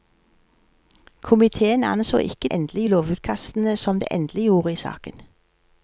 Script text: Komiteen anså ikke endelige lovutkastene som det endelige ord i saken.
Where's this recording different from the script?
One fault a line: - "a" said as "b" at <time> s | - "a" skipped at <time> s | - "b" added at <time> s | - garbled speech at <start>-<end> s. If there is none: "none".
none